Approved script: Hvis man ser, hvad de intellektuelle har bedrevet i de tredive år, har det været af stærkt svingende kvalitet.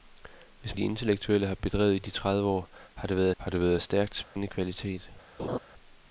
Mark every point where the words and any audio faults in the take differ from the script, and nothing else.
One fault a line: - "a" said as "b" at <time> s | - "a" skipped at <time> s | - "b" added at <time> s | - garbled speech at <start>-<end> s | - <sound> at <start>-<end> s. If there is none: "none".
- "man ser hvad" skipped at 0.8 s
- "har det været" added at 3.4 s
- dropout at 4.2-4.4 s
- laugh at 5.4-5.6 s